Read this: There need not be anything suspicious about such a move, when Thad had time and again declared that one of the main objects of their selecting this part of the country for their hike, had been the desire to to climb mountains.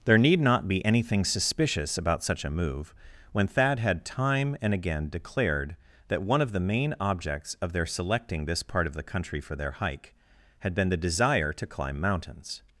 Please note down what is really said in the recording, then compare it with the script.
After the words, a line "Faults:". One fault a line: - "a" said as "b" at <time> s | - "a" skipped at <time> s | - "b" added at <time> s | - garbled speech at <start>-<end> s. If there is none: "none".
There need not be anything suspicious about such a move, when Thad had time and again declared that one of the main objects of their selecting this part of the country for their hike, had been the desire to climb mountains.
Faults:
- "to" skipped at 11.7 s